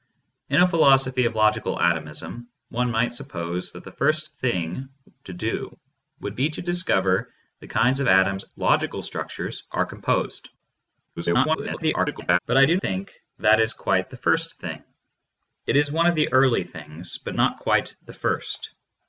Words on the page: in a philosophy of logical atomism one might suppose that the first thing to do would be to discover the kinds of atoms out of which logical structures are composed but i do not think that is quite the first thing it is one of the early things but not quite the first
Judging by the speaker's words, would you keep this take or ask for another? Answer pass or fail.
fail